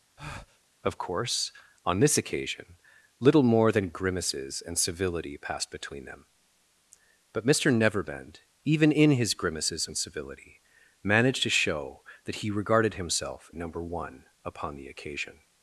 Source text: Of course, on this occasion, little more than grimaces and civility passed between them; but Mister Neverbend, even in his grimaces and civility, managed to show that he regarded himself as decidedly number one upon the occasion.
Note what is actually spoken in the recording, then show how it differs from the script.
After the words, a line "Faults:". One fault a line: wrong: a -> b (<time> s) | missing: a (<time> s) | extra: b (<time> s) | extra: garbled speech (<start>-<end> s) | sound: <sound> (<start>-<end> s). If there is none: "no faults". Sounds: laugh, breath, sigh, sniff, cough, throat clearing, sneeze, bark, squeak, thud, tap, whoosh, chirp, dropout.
Of course, on this occasion, little more than grimaces and civility passed between them; but Mister Neverbend, even in his grimaces and civility, managed to show that he regarded himself number one upon the occasion.
Faults:
sound: breath (0.2-0.6 s)
missing: as decidedly (13.5 s)